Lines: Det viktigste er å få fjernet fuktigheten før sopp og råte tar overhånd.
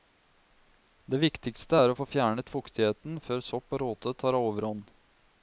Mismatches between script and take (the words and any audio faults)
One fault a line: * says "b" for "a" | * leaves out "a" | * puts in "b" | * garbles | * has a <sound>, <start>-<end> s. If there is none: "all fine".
all fine